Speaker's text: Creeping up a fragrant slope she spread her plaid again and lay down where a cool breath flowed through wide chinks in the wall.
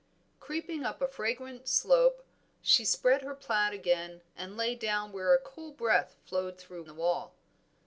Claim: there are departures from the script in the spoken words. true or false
true